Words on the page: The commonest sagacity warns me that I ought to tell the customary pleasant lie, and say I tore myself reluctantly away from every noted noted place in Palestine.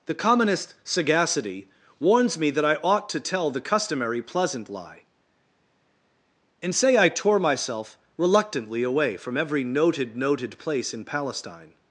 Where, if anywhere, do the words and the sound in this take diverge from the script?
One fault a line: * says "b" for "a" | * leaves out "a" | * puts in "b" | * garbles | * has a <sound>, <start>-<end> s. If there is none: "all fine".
all fine